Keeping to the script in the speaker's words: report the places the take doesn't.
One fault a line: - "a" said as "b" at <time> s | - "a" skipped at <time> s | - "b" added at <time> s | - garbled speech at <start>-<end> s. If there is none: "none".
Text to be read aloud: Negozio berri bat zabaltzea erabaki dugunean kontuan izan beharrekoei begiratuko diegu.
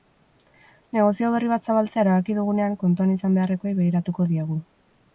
none